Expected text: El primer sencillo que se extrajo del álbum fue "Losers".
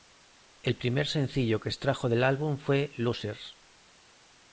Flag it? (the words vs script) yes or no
yes